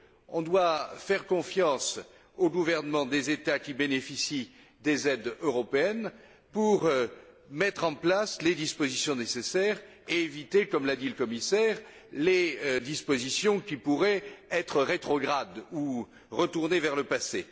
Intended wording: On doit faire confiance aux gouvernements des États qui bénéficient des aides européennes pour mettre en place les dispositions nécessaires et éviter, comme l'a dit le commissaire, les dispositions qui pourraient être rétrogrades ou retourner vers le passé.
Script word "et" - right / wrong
right